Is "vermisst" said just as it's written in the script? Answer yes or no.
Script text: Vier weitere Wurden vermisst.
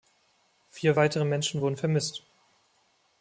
yes